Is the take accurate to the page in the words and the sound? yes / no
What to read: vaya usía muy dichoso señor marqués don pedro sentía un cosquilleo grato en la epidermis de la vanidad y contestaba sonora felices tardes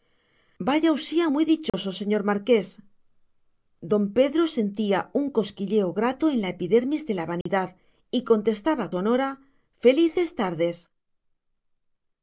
no